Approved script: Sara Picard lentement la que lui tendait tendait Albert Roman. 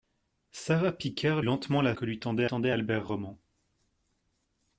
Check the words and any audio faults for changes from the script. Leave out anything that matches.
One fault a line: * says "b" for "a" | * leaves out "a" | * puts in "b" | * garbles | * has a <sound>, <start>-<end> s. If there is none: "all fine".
all fine